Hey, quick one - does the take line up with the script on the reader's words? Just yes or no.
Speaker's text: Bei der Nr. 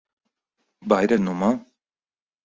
yes